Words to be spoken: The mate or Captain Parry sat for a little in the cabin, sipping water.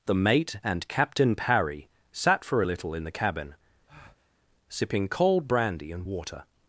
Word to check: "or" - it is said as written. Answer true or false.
false